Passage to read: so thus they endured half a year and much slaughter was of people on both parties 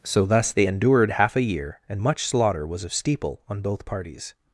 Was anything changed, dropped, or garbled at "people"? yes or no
yes